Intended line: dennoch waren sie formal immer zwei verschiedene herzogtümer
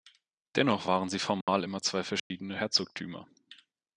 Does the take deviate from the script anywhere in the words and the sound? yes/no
yes